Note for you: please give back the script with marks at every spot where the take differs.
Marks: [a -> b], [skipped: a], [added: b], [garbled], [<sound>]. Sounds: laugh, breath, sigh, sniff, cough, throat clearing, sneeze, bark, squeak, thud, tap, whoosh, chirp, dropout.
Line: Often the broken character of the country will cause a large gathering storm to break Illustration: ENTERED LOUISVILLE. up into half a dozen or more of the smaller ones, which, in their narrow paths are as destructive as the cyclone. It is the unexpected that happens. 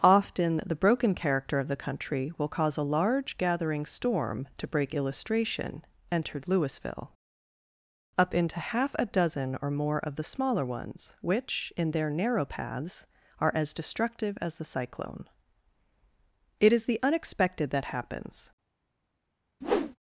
Often the broken character of the country will cause a large gathering storm to break Illustration: ENTERED LOUISVILLE. up into half a dozen or more of the smaller ones, which, in their narrow paths are as destructive as the cyclone. It is the unexpected that happens. [whoosh]